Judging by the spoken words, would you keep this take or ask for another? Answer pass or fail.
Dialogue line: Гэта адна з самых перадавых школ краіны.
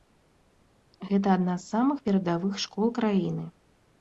pass